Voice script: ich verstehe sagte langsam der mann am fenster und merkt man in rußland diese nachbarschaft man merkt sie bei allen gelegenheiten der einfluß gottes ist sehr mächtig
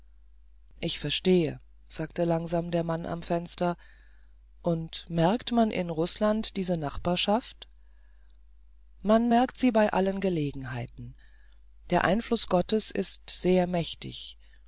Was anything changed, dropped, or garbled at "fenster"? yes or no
no